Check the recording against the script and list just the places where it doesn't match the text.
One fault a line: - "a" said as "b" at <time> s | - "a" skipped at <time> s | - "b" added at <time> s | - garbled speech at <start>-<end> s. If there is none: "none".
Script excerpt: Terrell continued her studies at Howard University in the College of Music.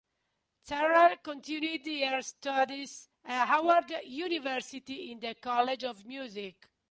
none